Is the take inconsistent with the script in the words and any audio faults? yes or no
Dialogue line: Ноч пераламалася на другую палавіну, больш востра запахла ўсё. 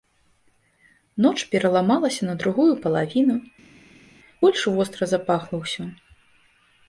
no